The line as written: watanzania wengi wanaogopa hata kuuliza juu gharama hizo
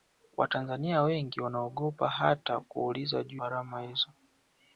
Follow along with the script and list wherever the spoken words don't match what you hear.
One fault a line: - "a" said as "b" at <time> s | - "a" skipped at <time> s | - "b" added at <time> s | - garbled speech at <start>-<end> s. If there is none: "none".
none